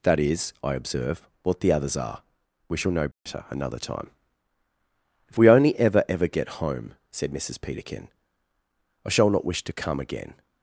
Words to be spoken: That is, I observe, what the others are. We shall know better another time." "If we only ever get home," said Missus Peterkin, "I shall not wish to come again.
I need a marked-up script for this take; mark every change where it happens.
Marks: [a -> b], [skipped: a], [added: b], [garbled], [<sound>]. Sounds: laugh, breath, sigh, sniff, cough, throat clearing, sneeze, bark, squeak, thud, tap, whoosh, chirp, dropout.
That is, I observe, what the others are. We shall know better [dropout] another time." "If we only ever [added: ever] get home," said Missus Peterkin, "I shall not wish to come again.